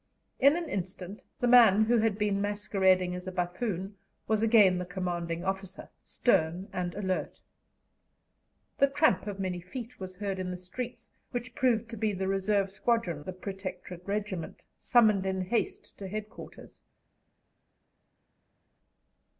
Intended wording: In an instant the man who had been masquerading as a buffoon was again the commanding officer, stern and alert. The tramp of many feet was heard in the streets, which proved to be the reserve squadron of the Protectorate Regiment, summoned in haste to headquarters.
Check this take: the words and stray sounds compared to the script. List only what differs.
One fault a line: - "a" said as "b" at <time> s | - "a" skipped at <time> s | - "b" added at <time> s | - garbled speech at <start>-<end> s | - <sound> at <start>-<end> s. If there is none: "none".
- "of" skipped at 13.2 s